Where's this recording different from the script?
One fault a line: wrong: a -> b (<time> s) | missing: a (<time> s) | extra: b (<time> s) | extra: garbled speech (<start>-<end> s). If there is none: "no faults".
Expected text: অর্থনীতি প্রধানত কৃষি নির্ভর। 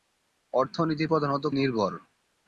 missing: কৃষি (1.4 s)